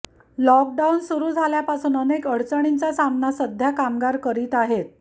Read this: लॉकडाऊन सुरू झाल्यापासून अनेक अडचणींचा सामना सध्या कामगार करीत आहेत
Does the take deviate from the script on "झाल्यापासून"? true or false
false